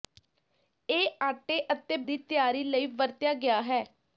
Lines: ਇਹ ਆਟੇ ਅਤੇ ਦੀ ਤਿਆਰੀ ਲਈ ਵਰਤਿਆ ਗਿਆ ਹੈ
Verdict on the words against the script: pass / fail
pass